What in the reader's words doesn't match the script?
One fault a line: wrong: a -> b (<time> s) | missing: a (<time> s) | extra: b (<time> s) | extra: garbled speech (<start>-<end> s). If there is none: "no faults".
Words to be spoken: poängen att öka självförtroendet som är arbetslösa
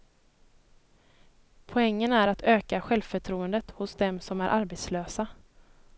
extra: är (2.1 s)
extra: hos dem (3.7 s)